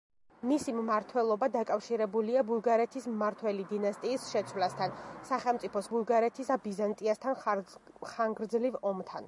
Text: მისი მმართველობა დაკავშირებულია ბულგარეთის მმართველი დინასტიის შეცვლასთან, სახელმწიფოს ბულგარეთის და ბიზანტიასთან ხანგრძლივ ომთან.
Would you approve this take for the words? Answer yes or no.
yes